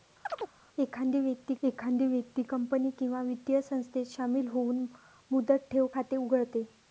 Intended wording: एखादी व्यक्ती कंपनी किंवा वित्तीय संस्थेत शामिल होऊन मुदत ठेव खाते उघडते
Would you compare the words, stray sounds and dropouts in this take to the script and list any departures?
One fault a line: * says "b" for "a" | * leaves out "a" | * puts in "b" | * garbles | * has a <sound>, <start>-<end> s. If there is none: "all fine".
* has a chirp, 0.3-0.5 s
* puts in "एखादी व्यक्ती"